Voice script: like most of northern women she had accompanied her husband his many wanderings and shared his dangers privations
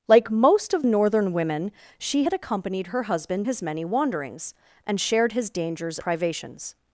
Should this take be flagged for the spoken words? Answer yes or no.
no